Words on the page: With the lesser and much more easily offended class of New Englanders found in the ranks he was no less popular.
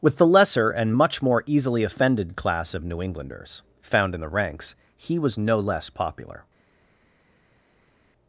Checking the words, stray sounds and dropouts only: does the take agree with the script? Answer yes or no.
yes